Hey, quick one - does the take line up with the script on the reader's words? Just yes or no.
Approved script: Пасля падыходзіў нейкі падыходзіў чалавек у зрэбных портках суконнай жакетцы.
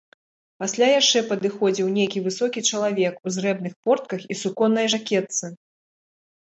no